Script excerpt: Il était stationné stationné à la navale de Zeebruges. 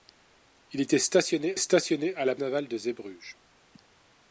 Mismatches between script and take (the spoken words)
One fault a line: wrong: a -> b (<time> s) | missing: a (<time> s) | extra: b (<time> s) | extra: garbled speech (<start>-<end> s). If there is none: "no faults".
no faults